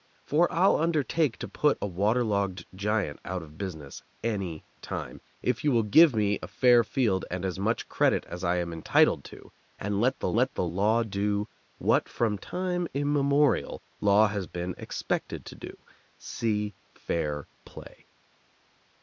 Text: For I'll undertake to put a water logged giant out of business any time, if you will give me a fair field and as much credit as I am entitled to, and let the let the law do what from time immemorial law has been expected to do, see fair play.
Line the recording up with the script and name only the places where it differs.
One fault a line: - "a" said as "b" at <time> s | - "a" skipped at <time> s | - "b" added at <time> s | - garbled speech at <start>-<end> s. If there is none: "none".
none